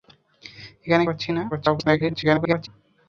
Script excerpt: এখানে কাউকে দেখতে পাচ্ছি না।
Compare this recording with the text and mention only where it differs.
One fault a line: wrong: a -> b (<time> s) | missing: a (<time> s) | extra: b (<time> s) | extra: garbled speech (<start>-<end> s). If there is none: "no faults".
missing: কাউকে দেখতে (1.0 s)
extra: garbled speech (1.5-2.7 s)